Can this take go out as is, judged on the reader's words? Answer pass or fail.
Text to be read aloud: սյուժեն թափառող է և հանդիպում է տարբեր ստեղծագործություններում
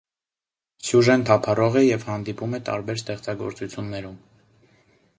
pass